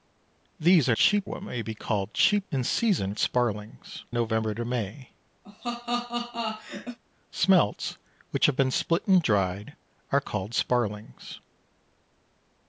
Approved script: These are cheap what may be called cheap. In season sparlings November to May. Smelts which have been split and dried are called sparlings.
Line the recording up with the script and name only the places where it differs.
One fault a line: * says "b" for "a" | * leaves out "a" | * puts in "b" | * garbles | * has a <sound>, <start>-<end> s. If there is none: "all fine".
* has a laugh, 5.4-7.0 s